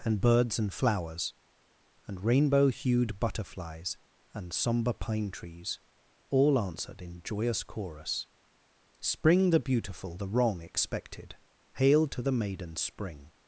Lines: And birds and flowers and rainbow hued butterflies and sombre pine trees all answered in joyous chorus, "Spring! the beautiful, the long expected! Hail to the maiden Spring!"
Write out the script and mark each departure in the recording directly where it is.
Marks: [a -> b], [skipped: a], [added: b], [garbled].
And birds and flowers and rainbow hued butterflies and sombre pine trees all answered in joyous chorus, "Spring! the beautiful, the [long -> wrong] expected! Hail to the maiden Spring!"